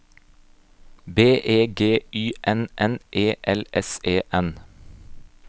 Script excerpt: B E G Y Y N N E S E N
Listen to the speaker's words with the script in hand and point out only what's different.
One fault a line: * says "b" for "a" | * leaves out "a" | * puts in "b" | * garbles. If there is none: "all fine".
* leaves out "Y"
* puts in "L"